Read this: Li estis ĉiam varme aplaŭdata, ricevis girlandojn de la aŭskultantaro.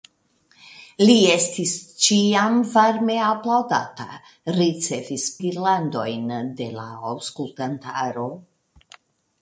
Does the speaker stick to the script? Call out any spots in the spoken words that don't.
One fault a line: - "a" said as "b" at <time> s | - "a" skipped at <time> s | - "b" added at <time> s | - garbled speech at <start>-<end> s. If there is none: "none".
none